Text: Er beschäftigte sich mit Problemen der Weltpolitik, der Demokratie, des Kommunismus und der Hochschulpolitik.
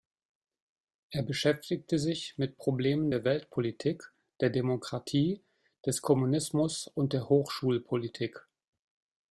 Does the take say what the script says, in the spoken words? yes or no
yes